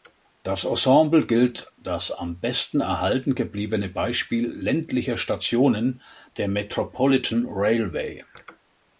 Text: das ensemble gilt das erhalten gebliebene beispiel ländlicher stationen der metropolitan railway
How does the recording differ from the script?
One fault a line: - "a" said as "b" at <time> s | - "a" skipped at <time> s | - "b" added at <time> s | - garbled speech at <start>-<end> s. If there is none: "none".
- "am besten" added at 2.1 s